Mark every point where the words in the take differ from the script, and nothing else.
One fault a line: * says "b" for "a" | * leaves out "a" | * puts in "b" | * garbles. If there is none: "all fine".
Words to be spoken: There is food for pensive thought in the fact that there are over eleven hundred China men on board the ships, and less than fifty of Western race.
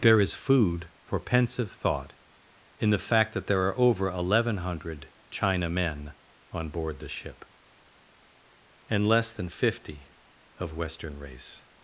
* says "ship" for "ships"